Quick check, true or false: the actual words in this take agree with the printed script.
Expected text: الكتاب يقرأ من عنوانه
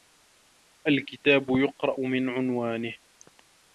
true